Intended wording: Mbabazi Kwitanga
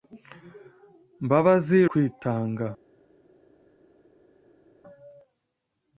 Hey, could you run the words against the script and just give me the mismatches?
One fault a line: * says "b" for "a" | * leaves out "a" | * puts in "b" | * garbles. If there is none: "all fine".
all fine